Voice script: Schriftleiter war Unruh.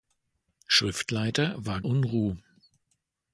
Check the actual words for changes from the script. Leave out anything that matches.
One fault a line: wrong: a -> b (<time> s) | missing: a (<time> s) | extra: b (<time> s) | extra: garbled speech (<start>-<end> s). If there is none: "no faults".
no faults